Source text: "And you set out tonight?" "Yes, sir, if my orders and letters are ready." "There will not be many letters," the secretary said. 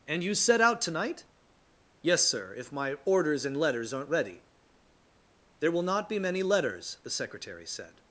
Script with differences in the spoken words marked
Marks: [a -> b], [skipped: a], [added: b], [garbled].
"And you set out tonight?" "Yes, sir, if my orders and letters [are -> aren't] ready." "There will not be many letters," the secretary said.